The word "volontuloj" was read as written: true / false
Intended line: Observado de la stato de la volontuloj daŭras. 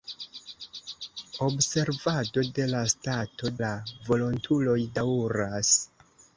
true